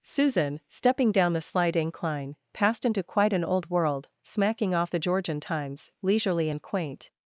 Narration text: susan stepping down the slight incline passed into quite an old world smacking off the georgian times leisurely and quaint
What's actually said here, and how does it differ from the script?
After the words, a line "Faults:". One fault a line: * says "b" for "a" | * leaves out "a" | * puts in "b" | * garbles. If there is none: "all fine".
susan stepping down the slight incline passed into quite an old world smacking off the georgian times leisurely and quaint
Faults:
all fine